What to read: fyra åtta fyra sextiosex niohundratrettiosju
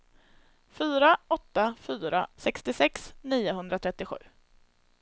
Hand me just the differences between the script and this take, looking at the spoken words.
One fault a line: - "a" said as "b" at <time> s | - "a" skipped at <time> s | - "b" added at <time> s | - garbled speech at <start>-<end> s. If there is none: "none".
none